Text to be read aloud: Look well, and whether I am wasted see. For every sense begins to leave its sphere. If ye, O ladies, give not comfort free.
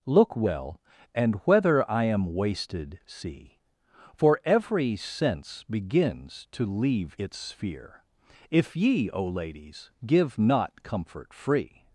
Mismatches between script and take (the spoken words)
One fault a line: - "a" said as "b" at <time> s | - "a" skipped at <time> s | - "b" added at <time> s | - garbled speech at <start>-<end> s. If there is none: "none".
none